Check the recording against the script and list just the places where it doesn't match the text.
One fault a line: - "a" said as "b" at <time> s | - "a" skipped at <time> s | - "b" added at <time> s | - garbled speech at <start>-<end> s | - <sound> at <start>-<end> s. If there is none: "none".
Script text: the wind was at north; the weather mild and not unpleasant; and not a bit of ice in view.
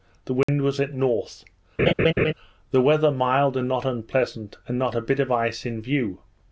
- dropout at 0.4-0.5 s
- laugh at 1.8-2.3 s